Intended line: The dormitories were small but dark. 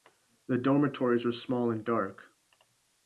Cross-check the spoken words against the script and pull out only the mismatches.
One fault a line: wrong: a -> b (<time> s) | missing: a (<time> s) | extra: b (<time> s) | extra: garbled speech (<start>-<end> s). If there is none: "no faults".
wrong: but -> and (1.7 s)